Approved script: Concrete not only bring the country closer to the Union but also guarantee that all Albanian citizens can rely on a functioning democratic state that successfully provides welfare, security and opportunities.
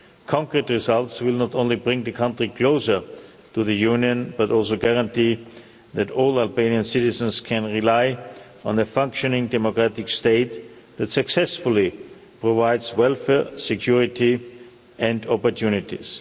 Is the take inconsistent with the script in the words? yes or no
yes